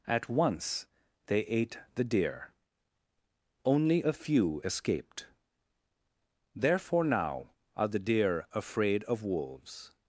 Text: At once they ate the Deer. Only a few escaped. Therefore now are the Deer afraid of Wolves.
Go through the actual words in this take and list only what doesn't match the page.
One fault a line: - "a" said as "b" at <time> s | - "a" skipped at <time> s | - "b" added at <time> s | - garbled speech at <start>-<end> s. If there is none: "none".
none